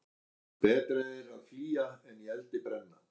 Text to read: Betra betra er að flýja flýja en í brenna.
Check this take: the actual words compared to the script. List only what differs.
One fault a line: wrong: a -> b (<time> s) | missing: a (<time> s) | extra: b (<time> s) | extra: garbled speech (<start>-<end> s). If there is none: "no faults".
missing: betra (1.0 s)
missing: flýja (1.9 s)
extra: eldi (2.4 s)